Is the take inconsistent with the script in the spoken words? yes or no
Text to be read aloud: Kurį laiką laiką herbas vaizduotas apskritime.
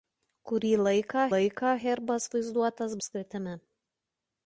no